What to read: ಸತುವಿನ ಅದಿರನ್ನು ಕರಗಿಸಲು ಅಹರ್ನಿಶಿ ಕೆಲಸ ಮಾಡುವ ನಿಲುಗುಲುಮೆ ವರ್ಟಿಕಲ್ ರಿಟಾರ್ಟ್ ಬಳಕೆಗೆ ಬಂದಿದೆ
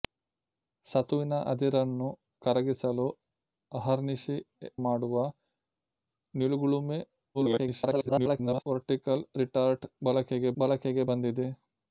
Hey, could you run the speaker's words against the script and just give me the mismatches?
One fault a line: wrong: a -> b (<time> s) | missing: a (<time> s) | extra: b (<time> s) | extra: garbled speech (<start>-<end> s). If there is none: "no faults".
missing: ಕೆಲಸ (4.4 s)
extra: garbled speech (7.3-8.6 s)
extra: ಬಳಕೆಗೆ (10.6 s)